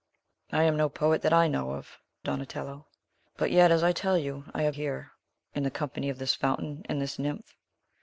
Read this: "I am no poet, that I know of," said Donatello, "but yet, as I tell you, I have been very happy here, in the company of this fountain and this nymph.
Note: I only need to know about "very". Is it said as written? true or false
false